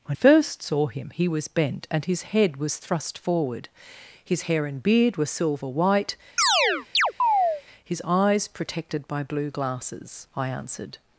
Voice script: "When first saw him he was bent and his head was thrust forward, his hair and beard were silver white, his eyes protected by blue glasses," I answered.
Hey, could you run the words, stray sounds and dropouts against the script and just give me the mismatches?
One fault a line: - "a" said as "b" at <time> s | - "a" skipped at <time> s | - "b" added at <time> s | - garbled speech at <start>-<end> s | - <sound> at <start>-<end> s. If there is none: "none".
- chirp at 6.4-7.6 s